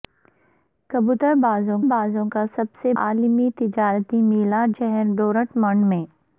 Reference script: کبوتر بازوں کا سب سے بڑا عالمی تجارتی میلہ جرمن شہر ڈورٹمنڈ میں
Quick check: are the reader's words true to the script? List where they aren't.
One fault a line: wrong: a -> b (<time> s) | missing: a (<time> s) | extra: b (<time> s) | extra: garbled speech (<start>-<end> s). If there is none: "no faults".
extra: بازوں (1.9 s)
missing: بڑا (2.9 s)
missing: جرمن (4.7 s)